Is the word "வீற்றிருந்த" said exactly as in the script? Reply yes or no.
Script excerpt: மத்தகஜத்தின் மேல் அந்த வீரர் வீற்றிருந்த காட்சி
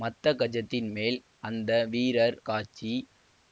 no